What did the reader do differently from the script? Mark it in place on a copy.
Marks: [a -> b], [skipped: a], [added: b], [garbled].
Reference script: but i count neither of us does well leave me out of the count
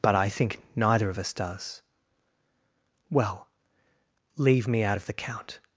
but i [count -> think] neither of us does well leave me out of the count